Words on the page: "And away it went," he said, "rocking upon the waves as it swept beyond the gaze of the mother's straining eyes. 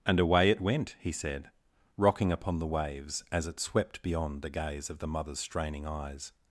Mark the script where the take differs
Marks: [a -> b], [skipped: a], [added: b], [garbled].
"And away it went," he said, "rocking upon the waves as it swept beyond the gaze of the mother's straining eyes.